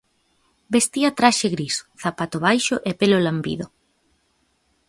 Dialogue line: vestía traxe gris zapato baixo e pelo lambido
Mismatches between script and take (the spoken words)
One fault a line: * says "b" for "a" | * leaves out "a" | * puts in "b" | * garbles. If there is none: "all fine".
all fine